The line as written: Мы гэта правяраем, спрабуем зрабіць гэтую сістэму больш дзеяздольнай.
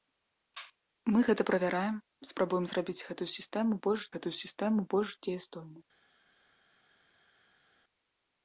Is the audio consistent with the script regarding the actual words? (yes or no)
no